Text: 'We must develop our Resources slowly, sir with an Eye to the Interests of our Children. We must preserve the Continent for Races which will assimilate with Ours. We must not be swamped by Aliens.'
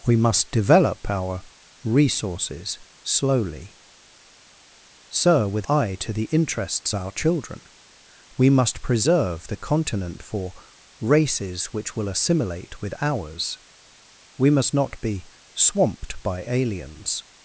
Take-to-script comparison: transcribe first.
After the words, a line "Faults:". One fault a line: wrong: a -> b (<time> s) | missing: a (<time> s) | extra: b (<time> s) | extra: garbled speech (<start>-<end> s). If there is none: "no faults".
'We must develop our Resources slowly, sir with Eye to the Interests our Children. We must preserve the Continent for Races which will assimilate with Ours. We must not be swamped by Aliens.'
Faults:
missing: an (5.7 s)
missing: of (6.9 s)